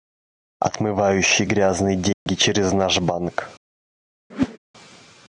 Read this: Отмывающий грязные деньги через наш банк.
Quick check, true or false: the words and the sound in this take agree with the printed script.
false